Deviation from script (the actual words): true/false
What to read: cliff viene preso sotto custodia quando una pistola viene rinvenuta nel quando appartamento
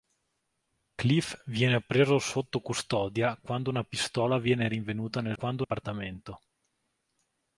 false